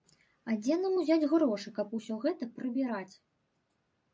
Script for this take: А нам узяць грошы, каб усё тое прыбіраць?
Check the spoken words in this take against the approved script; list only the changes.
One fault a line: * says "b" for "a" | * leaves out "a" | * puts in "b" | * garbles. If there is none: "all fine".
* puts in "дзе"
* says "гэта" for "тое"